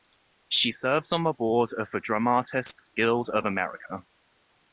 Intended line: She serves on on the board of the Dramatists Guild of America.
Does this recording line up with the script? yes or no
no